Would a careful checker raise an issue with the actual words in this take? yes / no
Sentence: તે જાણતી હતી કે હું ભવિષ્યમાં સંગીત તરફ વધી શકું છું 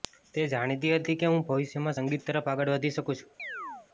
yes